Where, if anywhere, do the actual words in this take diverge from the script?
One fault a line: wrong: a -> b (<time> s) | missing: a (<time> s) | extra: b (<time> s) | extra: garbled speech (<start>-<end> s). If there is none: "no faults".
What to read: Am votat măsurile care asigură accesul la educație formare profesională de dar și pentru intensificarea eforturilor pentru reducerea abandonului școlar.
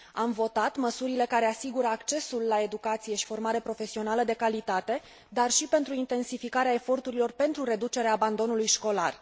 extra: și (3.1 s)
extra: calitate (4.3 s)